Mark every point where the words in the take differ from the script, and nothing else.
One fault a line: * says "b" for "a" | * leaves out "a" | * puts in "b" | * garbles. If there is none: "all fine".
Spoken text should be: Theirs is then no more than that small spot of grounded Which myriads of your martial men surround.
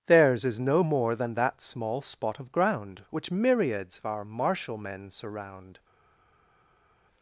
* leaves out "then"
* says "ground" for "grounded"
* says "our" for "your"